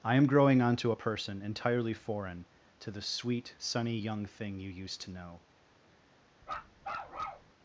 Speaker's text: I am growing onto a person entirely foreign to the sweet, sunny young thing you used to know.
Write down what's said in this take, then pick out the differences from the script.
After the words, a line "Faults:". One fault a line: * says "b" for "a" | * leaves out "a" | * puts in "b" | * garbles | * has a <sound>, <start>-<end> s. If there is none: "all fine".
I am growing onto a person entirely foreign to the sweet, sunny young thing you used to know.
Faults:
* has a bark, 6.4-7.5 s